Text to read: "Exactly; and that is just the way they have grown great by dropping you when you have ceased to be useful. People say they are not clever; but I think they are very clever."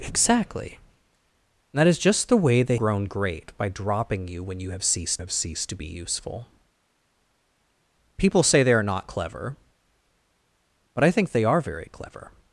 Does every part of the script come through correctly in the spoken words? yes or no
no